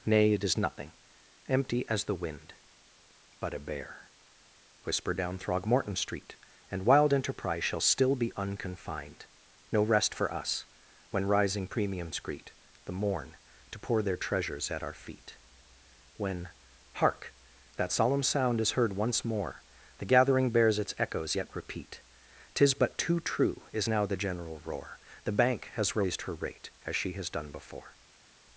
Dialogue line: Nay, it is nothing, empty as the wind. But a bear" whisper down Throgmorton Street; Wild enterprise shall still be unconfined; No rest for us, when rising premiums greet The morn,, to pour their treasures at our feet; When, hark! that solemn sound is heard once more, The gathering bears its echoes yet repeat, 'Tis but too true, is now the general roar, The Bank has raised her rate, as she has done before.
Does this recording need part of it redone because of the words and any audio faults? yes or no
yes